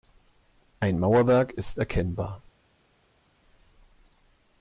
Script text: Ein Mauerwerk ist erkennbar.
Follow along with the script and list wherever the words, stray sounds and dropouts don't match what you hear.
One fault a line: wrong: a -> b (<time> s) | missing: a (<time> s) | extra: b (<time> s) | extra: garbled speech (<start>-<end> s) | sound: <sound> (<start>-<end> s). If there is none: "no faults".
no faults